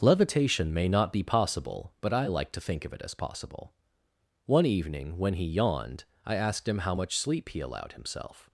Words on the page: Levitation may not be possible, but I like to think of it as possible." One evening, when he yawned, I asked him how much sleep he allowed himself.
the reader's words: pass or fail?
pass